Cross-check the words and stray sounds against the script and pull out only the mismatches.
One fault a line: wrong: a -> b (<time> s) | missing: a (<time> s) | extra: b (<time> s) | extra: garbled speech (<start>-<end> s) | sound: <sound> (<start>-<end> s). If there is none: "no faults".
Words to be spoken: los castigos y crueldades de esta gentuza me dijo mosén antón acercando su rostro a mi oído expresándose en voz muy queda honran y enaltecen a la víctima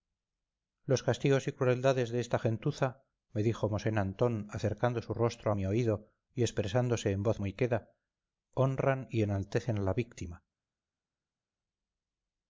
extra: y (6.3 s)